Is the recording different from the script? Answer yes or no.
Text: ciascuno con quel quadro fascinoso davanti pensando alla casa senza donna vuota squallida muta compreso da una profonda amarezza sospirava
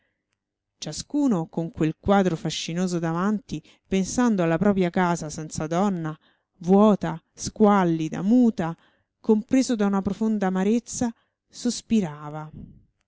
yes